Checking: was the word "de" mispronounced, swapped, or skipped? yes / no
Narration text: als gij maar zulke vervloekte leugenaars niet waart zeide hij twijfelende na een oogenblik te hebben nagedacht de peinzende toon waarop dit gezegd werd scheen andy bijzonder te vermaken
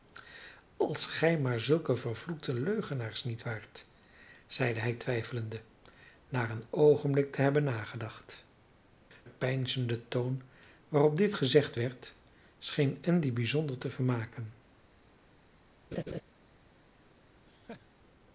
yes